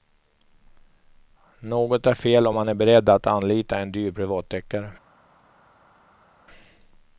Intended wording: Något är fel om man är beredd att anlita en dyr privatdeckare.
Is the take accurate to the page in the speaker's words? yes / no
yes